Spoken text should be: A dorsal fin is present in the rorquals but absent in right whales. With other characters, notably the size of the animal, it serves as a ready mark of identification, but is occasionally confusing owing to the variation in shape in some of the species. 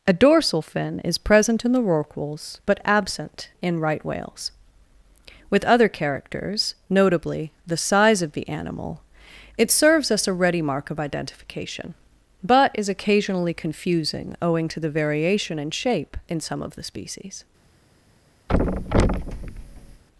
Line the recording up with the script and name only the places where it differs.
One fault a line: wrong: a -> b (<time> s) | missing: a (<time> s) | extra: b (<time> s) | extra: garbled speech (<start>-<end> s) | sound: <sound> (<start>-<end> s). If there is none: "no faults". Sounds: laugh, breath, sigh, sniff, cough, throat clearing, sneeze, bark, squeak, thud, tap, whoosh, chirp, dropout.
wrong: as -> us (10.1 s)
sound: thud (18.5-20.0 s)